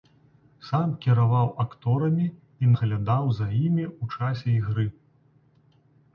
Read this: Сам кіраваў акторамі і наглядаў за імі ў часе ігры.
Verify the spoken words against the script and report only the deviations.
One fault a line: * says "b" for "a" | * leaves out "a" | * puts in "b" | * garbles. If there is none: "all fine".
all fine